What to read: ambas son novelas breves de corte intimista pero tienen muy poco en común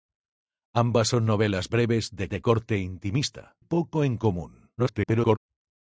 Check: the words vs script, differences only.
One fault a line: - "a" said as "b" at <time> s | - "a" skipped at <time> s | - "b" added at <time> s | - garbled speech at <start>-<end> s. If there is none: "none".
- "de" added at 2.3 s
- "pero tienen muy" skipped at 3.6 s
- garbled speech at 4.8-5.4 s